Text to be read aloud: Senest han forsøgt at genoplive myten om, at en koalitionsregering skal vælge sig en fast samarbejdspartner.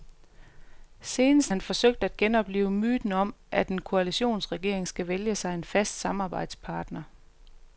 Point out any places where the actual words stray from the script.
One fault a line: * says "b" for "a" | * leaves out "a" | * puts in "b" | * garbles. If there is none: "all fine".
all fine